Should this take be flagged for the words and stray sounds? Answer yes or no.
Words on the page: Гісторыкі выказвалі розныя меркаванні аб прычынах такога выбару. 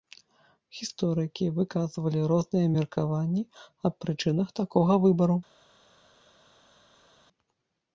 no